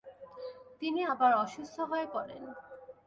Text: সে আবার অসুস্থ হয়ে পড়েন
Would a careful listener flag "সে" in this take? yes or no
yes